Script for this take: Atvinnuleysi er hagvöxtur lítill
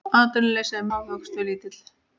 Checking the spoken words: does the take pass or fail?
pass